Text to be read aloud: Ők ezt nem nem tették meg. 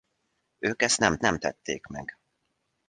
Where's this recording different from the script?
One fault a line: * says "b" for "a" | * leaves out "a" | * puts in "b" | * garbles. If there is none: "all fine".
all fine